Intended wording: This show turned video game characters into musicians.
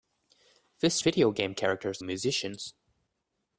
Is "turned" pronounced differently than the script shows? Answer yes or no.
yes